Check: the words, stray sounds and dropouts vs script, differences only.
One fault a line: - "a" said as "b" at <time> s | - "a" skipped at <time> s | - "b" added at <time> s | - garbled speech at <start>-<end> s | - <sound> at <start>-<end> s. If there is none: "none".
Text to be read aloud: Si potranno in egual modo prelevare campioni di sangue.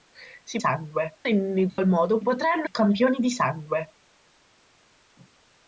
- "potranno" said as "sangue" at 0.6 s
- dropout at 1.7-1.8 s
- "prelevare" said as "potranno" at 2.2 s